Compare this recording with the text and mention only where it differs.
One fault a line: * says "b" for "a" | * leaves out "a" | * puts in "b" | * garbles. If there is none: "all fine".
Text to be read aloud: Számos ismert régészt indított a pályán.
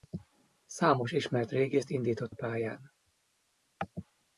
all fine